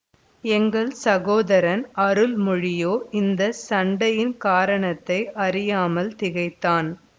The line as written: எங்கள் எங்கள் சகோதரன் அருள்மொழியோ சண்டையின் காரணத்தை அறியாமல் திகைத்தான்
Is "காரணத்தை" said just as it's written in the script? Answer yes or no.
yes